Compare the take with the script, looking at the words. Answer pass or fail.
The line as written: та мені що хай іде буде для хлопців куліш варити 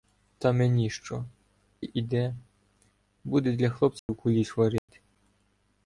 fail